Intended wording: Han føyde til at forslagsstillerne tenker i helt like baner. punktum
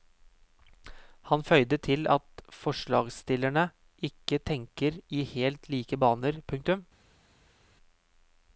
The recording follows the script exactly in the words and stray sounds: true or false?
false